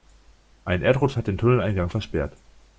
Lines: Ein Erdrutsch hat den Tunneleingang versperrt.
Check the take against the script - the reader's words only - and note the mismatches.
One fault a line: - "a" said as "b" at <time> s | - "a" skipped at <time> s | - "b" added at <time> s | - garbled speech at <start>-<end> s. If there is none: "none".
none